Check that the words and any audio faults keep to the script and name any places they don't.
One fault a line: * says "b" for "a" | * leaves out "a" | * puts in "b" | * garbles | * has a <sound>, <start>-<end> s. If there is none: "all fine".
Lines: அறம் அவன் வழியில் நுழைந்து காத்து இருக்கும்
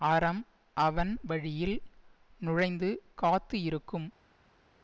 all fine